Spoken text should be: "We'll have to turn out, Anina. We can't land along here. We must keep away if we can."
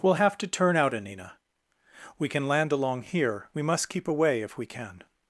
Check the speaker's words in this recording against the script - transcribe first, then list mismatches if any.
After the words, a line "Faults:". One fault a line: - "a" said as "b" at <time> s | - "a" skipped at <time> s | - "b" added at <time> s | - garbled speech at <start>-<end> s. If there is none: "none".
"We'll have to turn out, Anina. We can land along here. We must keep away if we can."
Faults:
- "can't" said as "can" at 2.3 s